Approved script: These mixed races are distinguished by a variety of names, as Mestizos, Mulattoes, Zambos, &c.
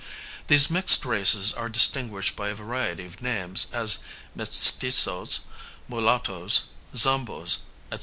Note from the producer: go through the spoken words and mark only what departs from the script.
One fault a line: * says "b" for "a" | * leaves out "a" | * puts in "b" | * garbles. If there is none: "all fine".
all fine